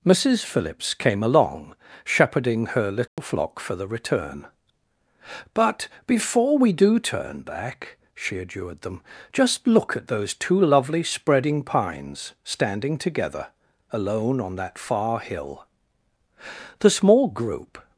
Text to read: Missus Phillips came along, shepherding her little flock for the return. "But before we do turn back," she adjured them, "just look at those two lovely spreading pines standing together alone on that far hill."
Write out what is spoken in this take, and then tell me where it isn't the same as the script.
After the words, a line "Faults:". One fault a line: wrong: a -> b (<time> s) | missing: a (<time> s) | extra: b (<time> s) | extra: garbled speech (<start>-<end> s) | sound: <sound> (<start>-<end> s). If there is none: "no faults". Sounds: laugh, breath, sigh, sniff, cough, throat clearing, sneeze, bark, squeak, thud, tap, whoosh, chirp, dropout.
Missus Phillips came along, shepherding her little flock for the return. "But before we do turn back," she adjured them, "just look at those two lovely spreading pines standing together alone on that far hill." The small group
Faults:
sound: dropout (3.1-3.2 s)
extra: The small group (16.8 s)